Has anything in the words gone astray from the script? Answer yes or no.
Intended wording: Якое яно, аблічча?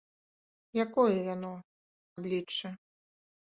no